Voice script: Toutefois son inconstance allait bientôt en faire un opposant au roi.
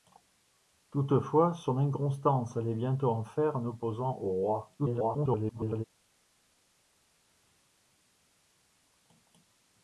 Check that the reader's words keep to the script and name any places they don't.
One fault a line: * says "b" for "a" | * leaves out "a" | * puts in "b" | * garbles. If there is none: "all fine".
* garbles